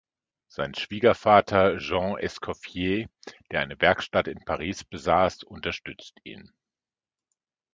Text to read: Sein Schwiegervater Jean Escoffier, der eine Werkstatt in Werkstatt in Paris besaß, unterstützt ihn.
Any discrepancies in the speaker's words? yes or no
yes